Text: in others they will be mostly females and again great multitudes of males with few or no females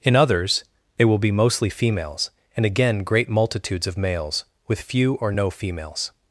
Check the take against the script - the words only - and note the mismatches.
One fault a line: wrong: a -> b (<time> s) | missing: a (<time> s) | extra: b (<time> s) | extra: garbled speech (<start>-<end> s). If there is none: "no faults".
no faults